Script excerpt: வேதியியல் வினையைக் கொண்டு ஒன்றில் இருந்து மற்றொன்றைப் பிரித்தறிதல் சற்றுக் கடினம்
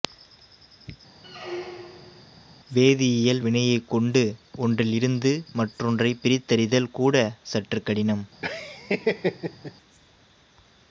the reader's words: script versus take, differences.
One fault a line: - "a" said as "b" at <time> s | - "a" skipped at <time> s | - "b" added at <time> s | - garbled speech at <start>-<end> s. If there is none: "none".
- "கூட" added at 6.9 s